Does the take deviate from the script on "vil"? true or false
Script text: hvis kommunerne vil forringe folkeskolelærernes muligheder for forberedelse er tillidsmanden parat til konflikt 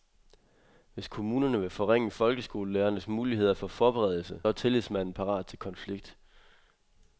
false